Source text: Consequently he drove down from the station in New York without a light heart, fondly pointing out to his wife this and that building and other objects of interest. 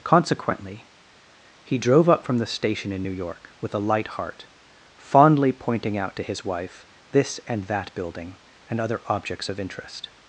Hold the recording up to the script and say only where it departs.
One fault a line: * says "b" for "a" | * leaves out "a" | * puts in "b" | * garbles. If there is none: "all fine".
* says "up" for "down"
* says "with" for "without"